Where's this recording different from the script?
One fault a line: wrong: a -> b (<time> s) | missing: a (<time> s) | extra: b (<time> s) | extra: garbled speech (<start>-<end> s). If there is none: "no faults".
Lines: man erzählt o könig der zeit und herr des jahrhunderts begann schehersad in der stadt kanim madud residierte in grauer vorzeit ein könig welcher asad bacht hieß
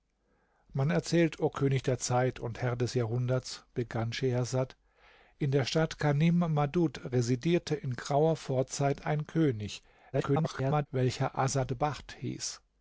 extra: garbled speech (10.1-10.9 s)